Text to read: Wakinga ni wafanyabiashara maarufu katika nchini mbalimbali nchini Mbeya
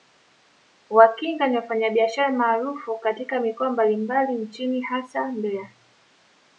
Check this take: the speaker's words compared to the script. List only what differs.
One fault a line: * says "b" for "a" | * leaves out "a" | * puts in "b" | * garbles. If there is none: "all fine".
* says "mikoa" for "nchini"
* puts in "hasa"